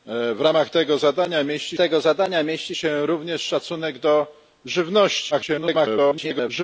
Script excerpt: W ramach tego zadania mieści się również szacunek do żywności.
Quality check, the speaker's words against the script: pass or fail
fail